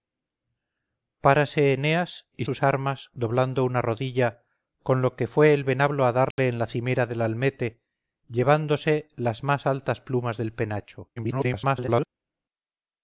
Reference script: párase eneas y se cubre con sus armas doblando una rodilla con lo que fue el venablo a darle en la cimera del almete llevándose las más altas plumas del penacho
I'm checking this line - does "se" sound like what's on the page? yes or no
no